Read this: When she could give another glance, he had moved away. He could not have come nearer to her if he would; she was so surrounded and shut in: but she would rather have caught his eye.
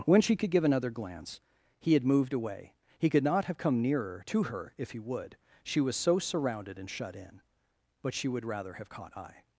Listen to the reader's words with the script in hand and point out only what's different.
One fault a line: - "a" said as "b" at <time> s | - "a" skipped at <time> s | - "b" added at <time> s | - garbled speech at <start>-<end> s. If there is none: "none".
- "his" skipped at 9.1 s